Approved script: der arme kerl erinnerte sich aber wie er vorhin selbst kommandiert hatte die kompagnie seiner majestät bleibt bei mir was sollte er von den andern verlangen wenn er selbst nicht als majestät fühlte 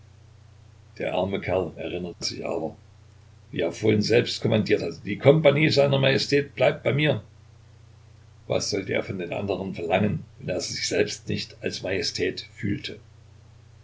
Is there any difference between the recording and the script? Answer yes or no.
yes